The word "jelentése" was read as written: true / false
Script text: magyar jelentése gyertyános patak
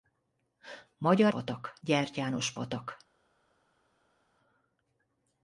false